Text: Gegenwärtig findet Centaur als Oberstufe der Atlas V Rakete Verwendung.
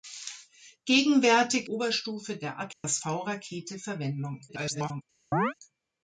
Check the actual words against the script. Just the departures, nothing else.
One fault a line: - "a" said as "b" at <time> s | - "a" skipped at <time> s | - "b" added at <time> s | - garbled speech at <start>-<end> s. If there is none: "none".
- "findet Centaur als" skipped at 1.7 s
- garbled speech at 4.5-5.0 s